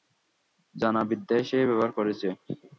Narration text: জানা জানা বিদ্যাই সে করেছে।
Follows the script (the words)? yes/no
no